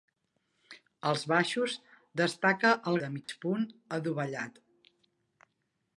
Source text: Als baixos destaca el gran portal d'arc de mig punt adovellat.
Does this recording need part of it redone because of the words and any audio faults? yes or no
yes